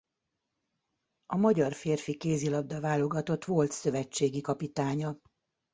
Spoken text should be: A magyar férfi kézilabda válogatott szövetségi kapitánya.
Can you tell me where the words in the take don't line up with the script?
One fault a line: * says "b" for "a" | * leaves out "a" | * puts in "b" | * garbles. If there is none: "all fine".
* puts in "volt"